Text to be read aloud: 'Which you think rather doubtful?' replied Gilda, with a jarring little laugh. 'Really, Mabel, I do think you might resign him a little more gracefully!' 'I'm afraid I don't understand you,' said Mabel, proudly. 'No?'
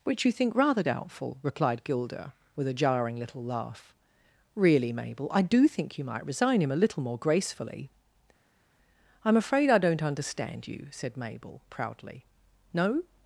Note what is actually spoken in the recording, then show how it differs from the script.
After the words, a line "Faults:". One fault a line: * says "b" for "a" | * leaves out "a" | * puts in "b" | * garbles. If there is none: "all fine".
'Which you think rather doubtful?' replied Gilda, with a jarring little laugh. 'Really, Mabel, I do think you might resign him a little more gracefully!' 'I'm afraid I don't understand you,' said Mabel, proudly. 'No?'
Faults:
all fine